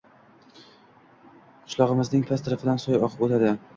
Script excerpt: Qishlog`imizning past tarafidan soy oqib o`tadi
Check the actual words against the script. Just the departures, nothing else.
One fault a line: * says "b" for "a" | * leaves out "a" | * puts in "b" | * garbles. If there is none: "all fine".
all fine